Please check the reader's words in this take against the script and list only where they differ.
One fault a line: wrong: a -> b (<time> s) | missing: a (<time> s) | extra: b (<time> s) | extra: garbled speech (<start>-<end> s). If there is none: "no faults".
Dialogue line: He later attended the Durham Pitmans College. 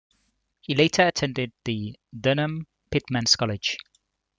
no faults